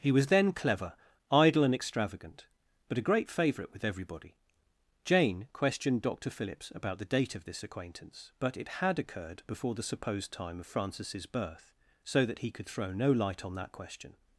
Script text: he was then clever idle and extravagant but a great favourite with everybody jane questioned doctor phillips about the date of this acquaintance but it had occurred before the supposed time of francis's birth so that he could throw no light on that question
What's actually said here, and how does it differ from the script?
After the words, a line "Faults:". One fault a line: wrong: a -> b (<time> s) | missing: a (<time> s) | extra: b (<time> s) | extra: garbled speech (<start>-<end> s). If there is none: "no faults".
he was then clever idle and extravagant but a great favourite with everybody jane questioned doctor phillips about the date of this acquaintance but it had occurred before the supposed time of francis's birth so that he could throw no light on that question
Faults:
no faults